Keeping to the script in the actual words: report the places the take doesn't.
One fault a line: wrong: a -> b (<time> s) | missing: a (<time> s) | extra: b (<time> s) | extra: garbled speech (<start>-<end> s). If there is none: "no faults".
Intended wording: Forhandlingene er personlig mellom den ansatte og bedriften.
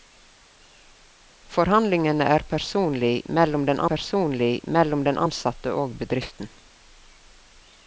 extra: personlig mellom den (3.9 s)